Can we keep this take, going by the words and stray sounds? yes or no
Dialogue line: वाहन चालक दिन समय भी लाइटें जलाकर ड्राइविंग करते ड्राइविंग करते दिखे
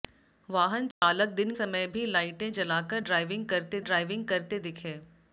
no